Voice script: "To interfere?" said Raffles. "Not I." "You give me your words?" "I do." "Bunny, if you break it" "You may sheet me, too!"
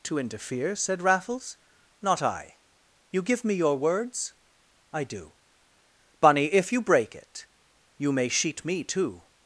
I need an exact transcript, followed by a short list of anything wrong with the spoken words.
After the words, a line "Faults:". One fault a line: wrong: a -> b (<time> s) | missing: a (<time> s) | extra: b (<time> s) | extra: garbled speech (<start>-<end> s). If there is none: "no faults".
"To interfere?" said Raffles. "Not I." "You give me your words?" "I do." "Bunny, if you break it" "You may sheet me, too!"
Faults:
no faults